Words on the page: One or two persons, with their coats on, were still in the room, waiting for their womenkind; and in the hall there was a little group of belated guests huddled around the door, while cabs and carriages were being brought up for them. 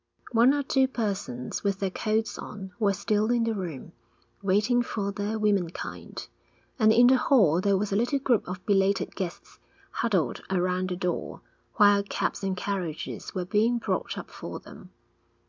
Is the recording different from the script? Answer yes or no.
no